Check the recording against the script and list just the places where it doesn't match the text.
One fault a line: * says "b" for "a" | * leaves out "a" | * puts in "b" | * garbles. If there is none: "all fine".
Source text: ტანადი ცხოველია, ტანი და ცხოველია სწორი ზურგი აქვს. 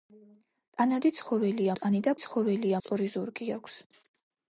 all fine